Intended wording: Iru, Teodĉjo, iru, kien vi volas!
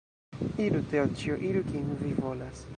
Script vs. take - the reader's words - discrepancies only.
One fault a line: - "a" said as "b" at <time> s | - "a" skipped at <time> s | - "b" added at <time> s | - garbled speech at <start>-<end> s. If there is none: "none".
none